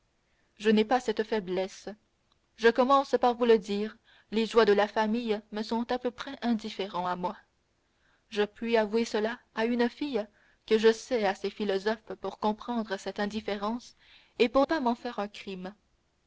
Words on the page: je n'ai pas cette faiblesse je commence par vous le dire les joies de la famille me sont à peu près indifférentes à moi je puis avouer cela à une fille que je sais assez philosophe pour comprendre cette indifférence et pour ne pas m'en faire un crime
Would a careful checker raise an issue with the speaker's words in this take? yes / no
yes